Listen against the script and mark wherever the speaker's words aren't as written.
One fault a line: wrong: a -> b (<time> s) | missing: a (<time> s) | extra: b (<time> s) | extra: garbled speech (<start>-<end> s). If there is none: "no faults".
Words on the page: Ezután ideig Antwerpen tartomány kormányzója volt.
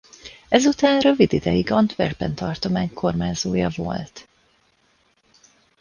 extra: rövid (1.0 s)